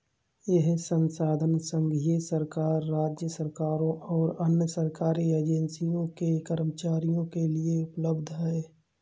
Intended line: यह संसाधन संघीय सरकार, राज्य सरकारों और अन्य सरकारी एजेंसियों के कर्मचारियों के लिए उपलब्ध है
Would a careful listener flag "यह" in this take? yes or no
no